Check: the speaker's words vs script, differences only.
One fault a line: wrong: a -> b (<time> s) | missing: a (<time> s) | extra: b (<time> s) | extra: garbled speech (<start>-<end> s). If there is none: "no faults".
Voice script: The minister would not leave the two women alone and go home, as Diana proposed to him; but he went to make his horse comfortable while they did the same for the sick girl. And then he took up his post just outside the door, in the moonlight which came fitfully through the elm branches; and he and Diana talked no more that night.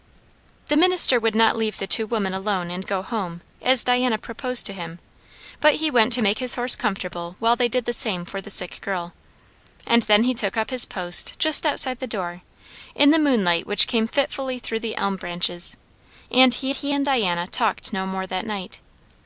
extra: he (16.7 s)